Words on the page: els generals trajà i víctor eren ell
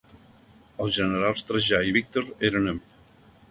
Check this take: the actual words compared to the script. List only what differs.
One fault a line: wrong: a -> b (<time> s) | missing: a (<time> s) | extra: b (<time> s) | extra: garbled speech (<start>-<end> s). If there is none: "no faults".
no faults